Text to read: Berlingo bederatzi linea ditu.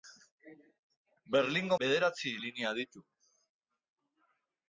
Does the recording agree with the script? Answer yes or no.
yes